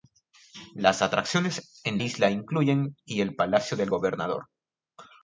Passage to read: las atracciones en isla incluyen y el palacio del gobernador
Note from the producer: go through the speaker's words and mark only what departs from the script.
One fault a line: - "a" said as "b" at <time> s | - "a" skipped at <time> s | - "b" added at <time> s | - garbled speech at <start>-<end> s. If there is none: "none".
none